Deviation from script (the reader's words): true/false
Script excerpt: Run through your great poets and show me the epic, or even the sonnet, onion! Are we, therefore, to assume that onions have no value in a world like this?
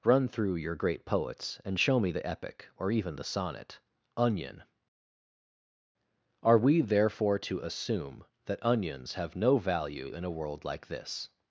false